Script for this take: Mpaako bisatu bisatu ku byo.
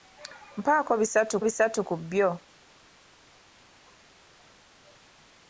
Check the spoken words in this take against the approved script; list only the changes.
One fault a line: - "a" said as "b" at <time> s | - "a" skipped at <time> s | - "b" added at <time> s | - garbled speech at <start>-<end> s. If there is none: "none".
none